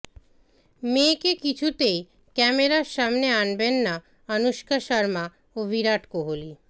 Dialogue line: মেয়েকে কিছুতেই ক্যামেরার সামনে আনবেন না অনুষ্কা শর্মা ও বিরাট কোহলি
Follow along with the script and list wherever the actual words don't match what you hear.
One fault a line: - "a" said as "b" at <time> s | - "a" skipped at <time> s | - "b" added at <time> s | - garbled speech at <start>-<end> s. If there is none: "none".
none